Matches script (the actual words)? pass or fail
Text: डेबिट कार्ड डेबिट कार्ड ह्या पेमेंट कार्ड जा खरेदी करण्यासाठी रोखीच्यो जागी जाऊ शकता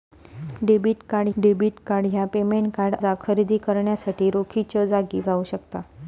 pass